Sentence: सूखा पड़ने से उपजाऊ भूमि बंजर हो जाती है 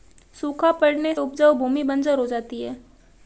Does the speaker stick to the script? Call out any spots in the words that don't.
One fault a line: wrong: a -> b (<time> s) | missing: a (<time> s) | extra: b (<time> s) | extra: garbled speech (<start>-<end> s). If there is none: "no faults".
missing: से (1.1 s)